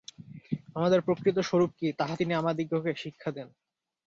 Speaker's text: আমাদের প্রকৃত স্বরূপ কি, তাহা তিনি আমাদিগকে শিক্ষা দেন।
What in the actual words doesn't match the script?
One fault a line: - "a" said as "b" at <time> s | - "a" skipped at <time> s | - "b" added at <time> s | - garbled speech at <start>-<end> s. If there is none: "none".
none